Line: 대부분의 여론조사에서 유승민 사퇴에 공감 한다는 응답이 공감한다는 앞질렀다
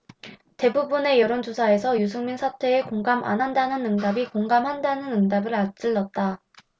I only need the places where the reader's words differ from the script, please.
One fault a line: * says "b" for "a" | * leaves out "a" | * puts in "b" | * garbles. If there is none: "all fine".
* puts in "안"
* puts in "응답을"